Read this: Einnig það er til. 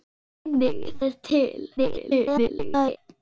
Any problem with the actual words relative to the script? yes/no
yes